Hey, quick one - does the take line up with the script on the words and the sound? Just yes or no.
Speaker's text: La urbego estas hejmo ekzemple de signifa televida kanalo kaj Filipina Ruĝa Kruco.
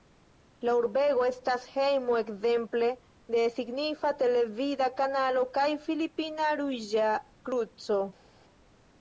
yes